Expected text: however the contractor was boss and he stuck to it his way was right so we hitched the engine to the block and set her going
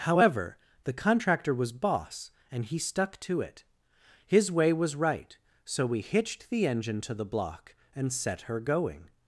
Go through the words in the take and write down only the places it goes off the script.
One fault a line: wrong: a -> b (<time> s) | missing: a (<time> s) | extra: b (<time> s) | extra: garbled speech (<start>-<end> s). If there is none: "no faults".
no faults